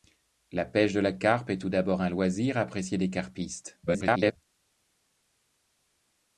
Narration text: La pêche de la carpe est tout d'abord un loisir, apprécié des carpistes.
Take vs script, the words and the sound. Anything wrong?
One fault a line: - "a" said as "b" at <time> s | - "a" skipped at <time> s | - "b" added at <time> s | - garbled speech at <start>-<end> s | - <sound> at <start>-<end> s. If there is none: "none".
- garbled speech at 3.9-4.4 s